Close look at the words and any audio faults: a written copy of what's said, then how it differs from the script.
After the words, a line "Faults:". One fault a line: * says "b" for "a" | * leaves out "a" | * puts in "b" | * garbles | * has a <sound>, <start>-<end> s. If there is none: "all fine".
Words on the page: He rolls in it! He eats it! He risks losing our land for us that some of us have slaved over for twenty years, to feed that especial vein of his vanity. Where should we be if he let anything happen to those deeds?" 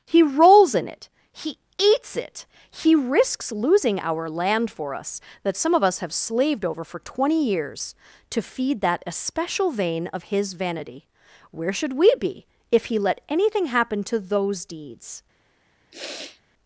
He rolls in it! He eats it! He risks losing our land for us that some of us have slaved over for twenty years, to feed that especial vein of his vanity. Where should we be if he let anything happen to those deeds?"
Faults:
* has a sniff, 15.9-16.4 s